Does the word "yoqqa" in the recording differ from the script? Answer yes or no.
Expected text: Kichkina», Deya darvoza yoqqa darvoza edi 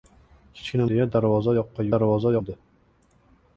no